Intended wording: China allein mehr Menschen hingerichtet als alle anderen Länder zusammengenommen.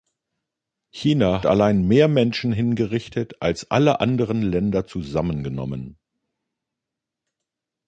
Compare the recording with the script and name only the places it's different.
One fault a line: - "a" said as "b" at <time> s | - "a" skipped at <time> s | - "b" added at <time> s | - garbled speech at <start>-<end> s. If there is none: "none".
none